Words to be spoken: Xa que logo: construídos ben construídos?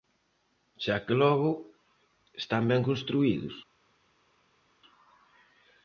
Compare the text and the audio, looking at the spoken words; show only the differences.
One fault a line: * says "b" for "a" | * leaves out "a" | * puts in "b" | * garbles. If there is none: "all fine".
* says "están" for "construídos"